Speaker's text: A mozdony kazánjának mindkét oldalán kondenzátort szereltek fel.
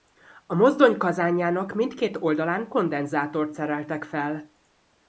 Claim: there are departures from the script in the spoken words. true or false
false